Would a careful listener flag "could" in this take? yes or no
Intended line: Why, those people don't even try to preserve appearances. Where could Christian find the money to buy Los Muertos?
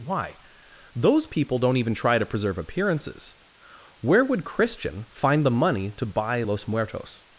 yes